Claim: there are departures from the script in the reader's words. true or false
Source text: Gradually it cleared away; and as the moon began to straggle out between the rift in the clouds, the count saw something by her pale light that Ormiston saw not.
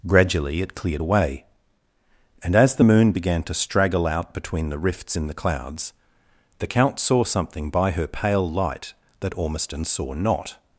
true